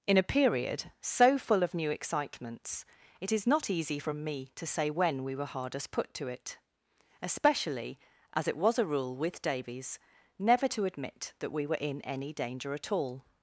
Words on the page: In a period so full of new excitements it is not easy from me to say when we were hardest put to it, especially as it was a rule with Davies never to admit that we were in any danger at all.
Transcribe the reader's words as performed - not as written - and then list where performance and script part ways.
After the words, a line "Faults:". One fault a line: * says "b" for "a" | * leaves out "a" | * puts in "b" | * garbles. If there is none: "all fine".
In a period so full of new excitements it is not easy from me to say when we were hardest put to it, especially as it was a rule with Davies never to admit that we were in any danger at all.
Faults:
all fine